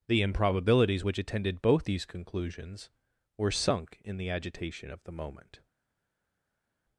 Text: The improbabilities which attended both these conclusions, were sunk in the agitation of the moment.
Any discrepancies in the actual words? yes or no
no